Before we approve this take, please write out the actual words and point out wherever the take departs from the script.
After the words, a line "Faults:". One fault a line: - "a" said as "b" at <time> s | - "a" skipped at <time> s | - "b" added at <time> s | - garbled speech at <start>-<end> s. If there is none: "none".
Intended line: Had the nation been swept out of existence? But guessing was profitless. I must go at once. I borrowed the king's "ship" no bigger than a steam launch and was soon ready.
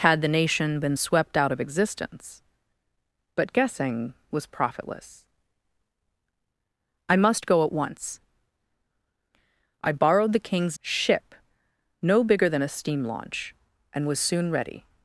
Had the nation been swept out of existence? But guessing was profitless. I must go at once. I borrowed the king's "ship" no bigger than a steam launch and was soon ready.
Faults:
none